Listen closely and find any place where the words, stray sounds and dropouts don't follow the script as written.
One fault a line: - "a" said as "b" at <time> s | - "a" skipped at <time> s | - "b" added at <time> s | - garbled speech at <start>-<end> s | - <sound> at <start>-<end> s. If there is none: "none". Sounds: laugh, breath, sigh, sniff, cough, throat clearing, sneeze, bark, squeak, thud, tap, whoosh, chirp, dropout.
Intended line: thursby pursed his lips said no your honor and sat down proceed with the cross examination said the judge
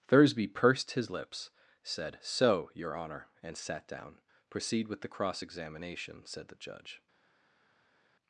- "no" said as "so" at 2.2 s